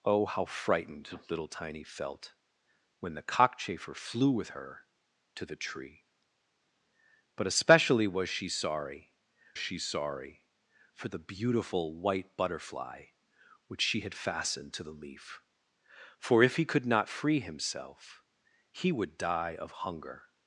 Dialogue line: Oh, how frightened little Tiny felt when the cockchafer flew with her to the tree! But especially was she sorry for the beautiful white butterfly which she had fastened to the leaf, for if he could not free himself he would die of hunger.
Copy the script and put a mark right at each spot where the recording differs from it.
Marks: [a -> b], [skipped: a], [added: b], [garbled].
Oh, how frightened little Tiny felt when the cockchafer flew with her to the tree! But especially was she sorry [added: she sorry] for the beautiful white butterfly which she had fastened to the leaf, for if he could not free himself he would die of hunger.